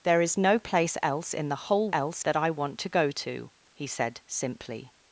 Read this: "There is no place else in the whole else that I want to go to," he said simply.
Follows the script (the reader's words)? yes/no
yes